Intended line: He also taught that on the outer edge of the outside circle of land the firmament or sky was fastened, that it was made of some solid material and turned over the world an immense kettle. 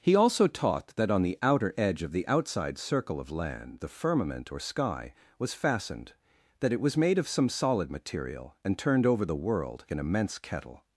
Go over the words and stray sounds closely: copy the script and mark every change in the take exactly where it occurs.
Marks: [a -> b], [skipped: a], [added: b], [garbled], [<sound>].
He also taught that on the outer edge of the outside circle of land the firmament or sky was fastened, that it was made of some solid material and turned over the world an immense kettle.